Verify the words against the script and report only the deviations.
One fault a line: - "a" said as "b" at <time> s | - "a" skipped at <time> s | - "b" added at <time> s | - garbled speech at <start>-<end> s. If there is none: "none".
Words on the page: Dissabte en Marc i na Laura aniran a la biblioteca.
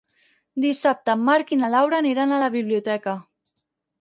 none